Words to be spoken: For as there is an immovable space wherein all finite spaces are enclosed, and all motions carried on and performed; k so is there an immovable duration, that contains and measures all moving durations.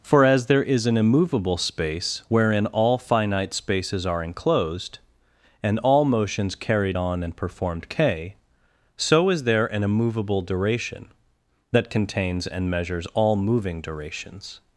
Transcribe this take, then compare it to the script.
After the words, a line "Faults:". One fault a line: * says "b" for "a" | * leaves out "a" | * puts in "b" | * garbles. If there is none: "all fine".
For as there is an immovable space wherein all finite spaces are enclosed, and all motions carried on and performed; k so is there an immovable duration, that contains and measures all moving durations.
Faults:
all fine